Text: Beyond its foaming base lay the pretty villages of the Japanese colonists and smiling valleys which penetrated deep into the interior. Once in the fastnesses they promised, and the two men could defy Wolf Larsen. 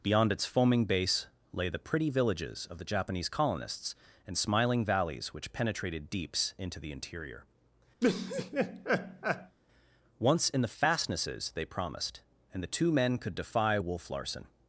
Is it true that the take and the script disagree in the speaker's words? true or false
true